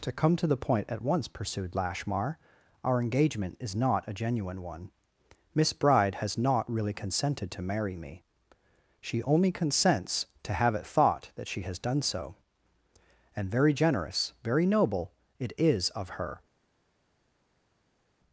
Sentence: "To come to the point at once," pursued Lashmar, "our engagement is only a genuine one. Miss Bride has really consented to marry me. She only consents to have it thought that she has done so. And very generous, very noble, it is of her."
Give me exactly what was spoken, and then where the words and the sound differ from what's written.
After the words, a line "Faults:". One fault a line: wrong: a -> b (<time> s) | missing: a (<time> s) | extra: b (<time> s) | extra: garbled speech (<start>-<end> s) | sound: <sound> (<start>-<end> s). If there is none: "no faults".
"To come to the point at once," pursued Lashmar, "our engagement is not a genuine one. Miss Bride has not really consented to marry me. She only consents to have it thought that she has done so. And very generous, very noble, it is of her."
Faults:
wrong: only -> not (3.8 s)
extra: not (6.4 s)